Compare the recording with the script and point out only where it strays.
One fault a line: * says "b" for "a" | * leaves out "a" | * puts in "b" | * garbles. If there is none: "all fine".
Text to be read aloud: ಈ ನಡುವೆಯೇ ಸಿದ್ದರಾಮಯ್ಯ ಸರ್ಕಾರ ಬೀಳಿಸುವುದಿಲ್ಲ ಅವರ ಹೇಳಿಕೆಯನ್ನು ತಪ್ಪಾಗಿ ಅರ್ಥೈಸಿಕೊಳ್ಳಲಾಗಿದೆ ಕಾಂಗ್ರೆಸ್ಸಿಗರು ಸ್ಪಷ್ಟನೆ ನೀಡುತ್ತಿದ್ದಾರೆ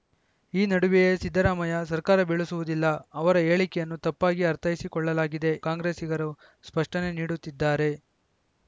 all fine